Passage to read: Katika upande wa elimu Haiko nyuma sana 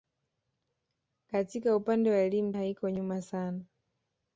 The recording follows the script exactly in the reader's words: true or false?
true